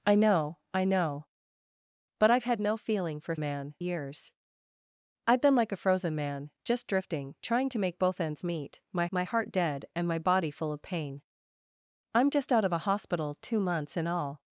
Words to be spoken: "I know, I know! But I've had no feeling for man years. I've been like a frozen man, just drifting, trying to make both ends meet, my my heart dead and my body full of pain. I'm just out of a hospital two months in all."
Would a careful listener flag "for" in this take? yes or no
no